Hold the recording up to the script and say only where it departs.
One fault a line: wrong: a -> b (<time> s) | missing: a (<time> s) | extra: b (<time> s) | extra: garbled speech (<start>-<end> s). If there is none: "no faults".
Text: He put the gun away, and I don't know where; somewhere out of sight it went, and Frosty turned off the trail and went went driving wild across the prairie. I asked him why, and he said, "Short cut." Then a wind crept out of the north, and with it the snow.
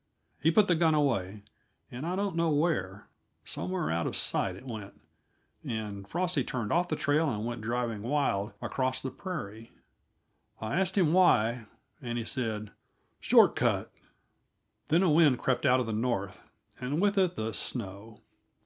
missing: went (7.6 s)